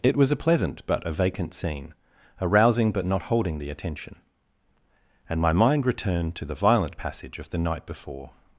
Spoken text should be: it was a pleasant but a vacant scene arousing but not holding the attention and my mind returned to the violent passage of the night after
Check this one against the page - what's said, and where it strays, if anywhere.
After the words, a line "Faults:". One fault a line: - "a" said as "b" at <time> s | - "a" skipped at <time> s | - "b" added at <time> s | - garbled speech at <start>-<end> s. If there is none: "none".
it was a pleasant but a vacant scene arousing but not holding the attention and my mind returned to the violent passage of the night before
Faults:
- "after" said as "before" at 7.9 s